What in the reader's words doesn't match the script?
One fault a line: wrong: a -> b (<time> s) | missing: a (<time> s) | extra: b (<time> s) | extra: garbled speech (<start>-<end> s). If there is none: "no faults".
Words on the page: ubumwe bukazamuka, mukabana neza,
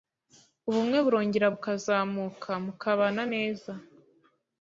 extra: burongera (1.0 s)